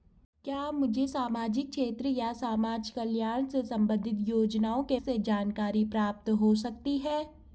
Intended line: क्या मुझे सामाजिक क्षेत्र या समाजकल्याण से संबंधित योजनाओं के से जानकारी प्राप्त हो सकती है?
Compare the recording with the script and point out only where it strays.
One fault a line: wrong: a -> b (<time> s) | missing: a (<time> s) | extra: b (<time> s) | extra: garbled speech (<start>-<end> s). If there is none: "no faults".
no faults